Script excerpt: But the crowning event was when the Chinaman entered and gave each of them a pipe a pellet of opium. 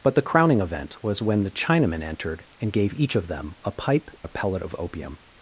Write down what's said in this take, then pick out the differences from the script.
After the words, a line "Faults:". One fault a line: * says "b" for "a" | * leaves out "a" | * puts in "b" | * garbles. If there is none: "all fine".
But the crowning event was when the Chinaman entered and gave each of them a pipe a pellet of opium.
Faults:
all fine